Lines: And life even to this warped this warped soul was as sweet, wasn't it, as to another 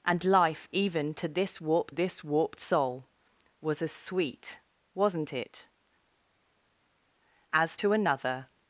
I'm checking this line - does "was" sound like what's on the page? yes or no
yes